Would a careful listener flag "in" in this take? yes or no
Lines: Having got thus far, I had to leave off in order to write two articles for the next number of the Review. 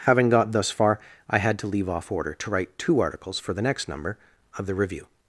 yes